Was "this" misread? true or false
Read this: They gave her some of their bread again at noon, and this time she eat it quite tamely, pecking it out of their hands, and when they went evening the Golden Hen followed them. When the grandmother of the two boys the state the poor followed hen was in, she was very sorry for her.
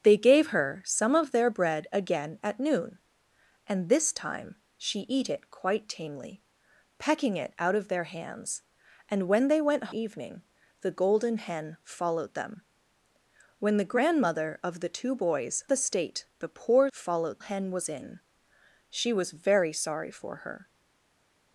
false